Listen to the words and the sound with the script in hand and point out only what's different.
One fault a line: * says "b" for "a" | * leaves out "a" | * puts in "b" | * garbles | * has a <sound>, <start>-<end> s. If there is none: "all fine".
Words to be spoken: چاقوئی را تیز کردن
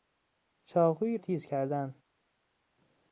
* leaves out "را"